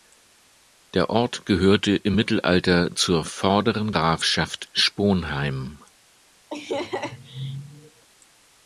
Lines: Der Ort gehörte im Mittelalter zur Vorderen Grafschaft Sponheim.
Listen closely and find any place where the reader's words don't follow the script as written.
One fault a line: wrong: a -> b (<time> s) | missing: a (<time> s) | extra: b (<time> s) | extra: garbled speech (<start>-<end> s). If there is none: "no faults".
no faults